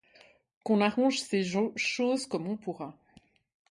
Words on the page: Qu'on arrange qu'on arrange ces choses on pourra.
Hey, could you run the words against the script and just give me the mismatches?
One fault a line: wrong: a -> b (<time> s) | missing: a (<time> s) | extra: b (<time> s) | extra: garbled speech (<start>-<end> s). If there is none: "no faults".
missing: qu'on arrange (1.2 s)
extra: comme (2.2 s)